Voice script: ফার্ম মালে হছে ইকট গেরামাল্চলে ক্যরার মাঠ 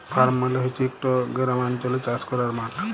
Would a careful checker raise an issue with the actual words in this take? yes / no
yes